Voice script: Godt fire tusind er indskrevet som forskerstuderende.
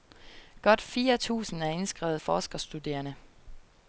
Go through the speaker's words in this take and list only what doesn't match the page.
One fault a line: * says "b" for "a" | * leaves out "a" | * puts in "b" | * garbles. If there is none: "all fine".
* leaves out "som"